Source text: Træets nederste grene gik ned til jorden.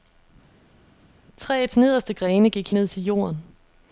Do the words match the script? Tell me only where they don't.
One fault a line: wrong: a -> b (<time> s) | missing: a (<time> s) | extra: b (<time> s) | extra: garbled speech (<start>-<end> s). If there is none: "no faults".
no faults